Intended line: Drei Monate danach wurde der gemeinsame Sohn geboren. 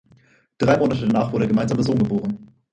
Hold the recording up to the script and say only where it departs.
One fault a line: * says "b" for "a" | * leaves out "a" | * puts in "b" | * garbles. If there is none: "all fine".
all fine